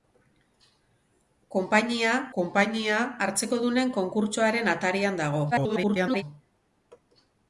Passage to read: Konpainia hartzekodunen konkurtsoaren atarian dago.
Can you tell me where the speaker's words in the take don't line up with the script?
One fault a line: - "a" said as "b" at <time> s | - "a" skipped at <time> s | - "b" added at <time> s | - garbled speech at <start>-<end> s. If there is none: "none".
- "konpainia" added at 2.4 s
- garbled speech at 5.5-6.2 s